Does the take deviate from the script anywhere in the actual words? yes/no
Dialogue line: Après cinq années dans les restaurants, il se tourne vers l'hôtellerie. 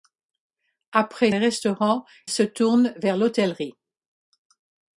yes